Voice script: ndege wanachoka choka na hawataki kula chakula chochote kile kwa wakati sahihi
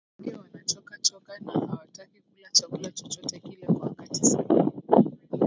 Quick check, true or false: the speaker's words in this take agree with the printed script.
true